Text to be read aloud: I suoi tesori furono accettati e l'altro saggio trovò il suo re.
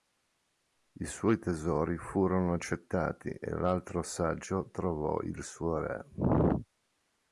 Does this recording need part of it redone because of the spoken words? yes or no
no